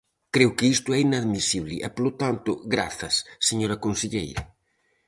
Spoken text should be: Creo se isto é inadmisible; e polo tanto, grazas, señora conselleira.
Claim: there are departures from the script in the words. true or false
true